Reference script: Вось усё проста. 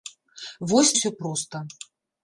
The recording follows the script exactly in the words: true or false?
true